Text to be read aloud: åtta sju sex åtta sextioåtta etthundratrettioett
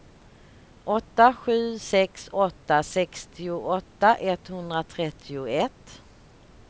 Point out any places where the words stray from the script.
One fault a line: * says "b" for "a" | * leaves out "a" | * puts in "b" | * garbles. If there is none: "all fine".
all fine